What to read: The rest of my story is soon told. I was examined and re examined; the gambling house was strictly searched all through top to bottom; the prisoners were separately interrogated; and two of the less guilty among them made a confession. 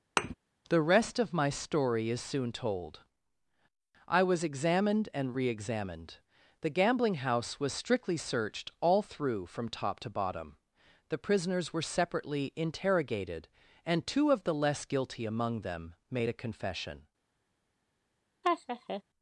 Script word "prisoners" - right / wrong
right